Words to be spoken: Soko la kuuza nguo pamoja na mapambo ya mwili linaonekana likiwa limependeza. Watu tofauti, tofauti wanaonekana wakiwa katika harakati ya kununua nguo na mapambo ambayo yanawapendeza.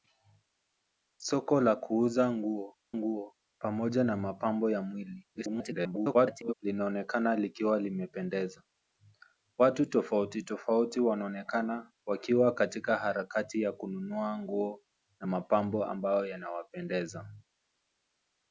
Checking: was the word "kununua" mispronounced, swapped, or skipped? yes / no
no